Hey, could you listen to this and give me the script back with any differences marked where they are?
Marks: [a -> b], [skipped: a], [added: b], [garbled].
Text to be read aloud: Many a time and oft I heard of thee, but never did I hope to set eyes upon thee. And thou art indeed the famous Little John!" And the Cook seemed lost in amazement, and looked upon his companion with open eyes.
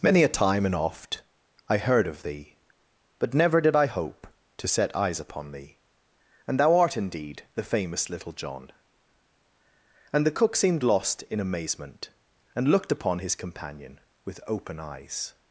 Many a time and oft I heard of thee, but never did I hope to set eyes upon thee. And thou art indeed the famous Little John!" And the Cook seemed lost in amazement, and looked upon his companion with open eyes.